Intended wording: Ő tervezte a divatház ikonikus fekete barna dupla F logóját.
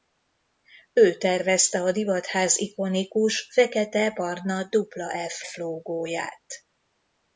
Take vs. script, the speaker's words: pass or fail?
fail